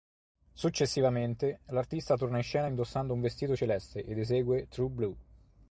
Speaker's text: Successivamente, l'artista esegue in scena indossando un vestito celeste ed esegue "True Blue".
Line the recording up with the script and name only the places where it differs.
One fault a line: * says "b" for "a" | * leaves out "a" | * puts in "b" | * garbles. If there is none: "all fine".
* says "torna" for "esegue"